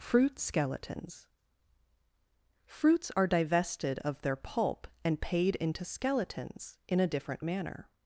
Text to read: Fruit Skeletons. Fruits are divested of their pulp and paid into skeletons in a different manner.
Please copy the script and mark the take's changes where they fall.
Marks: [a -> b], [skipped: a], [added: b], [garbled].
Fruit Skeletons. Fruits are divested of their pulp and paid into skeletons in a different manner.